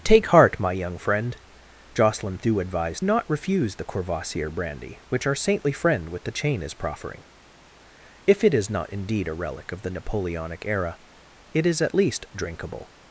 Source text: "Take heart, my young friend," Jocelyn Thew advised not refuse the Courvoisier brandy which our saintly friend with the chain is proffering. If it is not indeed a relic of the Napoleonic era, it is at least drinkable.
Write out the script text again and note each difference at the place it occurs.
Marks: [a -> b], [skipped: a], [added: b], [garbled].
"Take heart, my young friend," Jocelyn Thew advised not refuse the Courvoisier brandy which our saintly friend with the chain is proffering. If it is not indeed a relic of the Napoleonic era, it is at least drinkable.